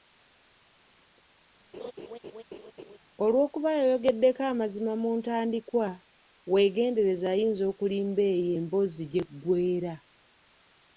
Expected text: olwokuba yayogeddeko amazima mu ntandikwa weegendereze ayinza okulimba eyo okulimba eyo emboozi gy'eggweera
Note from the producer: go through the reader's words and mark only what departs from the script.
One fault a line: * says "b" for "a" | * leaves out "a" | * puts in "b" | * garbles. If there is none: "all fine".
* leaves out "okulimba eyo"